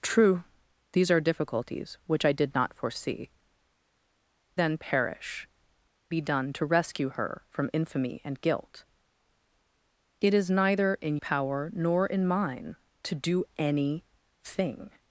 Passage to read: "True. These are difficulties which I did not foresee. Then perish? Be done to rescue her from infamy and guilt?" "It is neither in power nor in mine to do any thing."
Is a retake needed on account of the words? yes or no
no